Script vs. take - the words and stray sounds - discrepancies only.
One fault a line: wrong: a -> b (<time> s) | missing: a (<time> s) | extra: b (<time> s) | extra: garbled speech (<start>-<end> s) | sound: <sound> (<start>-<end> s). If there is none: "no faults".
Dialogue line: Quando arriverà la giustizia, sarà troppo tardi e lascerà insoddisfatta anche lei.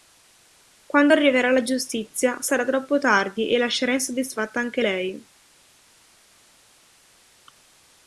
no faults